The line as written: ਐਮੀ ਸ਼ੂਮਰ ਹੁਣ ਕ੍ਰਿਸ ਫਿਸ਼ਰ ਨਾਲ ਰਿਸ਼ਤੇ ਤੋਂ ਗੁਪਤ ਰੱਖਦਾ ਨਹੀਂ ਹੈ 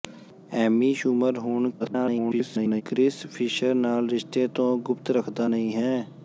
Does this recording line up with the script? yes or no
no